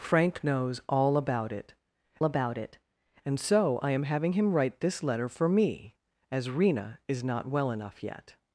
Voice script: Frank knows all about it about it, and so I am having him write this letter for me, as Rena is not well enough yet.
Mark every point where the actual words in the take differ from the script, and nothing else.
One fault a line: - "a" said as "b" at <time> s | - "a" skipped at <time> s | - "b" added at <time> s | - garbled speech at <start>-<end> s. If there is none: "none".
none